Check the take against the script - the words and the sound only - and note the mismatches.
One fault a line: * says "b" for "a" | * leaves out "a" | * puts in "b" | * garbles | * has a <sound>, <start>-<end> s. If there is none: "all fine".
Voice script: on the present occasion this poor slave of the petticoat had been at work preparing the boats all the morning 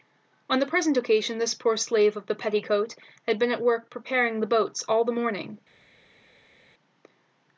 all fine